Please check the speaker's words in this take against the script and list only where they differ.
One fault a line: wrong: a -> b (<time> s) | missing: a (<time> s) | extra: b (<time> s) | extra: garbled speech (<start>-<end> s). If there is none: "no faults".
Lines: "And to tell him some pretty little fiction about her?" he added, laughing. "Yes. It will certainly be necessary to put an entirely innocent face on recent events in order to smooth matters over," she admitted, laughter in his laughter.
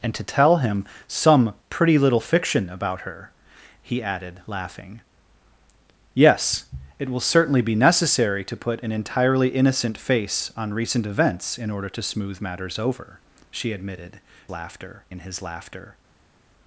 no faults